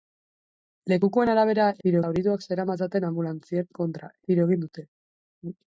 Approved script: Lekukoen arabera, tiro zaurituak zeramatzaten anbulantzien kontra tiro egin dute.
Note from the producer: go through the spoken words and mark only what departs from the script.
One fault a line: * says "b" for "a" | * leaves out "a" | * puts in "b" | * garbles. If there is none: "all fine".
all fine